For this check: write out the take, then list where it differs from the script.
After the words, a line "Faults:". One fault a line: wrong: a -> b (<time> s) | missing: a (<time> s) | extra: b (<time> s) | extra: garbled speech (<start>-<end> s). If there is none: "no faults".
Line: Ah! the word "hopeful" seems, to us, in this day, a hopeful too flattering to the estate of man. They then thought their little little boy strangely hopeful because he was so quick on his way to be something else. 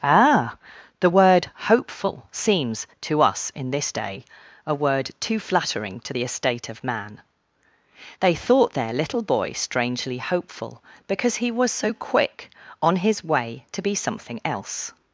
Ah! the word "hopeful" seems, to us, in this day, a word too flattering to the estate of man. They thought their little boy strangely hopeful because he was so quick on his way to be something else.
Faults:
wrong: hopeful -> word (4.7 s)
missing: then (8.3 s)
missing: little (9.2 s)